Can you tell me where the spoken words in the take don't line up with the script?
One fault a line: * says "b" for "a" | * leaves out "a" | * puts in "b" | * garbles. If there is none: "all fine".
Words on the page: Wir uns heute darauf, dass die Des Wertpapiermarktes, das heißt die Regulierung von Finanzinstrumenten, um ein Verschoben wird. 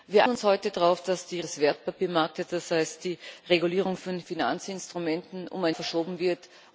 all fine